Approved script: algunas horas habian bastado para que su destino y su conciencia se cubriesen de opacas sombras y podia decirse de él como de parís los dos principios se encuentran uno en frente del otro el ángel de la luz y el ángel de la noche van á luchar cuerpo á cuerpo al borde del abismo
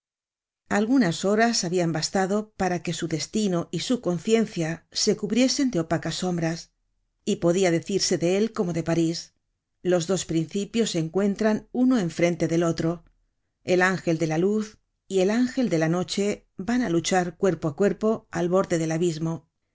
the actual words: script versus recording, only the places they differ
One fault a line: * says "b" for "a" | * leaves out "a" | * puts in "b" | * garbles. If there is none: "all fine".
all fine